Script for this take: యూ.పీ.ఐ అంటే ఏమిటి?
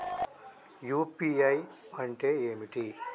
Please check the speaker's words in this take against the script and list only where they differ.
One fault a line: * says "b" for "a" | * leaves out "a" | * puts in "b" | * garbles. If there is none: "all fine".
all fine